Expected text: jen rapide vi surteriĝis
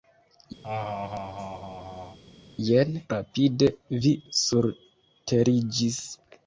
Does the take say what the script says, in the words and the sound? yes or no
no